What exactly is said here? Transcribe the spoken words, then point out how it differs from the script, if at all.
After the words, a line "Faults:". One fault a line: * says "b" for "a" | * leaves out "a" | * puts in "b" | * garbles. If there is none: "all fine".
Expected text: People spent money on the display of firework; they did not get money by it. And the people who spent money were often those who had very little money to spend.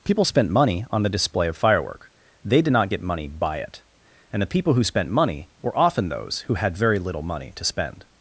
People spent money on the display of firework; they did not get money by it. And the people who spent money were often those who had very little money to spend.
Faults:
all fine